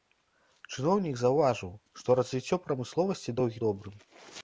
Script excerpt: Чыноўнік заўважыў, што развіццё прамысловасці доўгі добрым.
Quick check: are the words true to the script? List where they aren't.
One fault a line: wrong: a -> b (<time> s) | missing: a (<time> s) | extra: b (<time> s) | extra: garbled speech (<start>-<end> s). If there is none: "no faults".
no faults